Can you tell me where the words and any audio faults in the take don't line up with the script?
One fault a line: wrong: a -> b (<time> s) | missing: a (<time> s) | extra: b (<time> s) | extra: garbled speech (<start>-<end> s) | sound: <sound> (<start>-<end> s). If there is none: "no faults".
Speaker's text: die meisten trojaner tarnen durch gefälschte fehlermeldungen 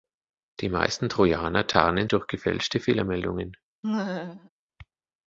sound: laugh (3.8-4.5 s)